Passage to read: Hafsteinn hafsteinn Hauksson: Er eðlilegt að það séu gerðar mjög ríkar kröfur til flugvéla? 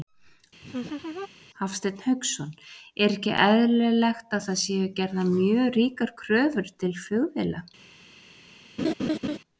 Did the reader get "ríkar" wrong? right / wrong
right